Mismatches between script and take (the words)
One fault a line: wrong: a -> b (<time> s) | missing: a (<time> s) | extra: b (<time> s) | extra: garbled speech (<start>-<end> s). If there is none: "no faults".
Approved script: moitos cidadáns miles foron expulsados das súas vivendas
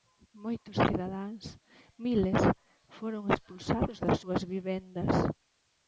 no faults